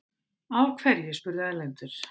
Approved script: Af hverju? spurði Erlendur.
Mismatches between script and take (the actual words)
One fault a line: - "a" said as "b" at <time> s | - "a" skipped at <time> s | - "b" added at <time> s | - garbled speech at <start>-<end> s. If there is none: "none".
none